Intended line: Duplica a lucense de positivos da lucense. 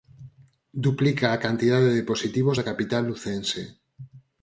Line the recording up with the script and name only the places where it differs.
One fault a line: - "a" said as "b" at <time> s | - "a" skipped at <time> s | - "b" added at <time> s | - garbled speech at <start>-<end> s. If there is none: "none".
- "lucense" said as "cantidade" at 1.4 s
- "capital" added at 2.7 s